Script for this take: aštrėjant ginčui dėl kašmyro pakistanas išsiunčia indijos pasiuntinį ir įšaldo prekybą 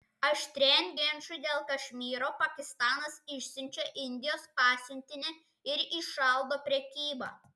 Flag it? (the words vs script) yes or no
no